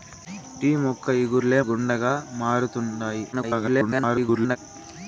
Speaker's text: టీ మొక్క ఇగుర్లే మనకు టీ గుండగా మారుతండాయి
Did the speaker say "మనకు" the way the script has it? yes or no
no